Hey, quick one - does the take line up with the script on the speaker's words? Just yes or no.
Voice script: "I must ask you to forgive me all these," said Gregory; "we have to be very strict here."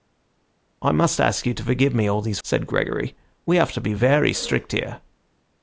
yes